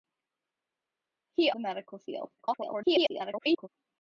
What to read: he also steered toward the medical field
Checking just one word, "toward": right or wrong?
wrong